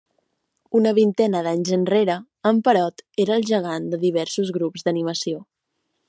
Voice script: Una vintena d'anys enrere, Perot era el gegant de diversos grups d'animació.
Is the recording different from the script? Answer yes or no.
yes